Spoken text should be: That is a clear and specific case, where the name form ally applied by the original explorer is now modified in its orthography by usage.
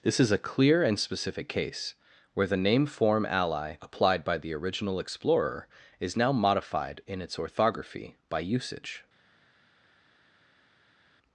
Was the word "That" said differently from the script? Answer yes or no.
yes